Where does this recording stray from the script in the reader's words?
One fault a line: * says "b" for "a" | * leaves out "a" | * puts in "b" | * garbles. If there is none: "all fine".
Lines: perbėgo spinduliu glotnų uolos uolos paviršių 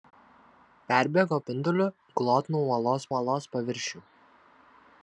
all fine